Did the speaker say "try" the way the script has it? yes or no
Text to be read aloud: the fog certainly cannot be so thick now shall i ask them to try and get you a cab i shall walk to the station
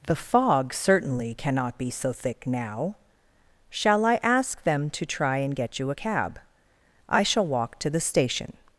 yes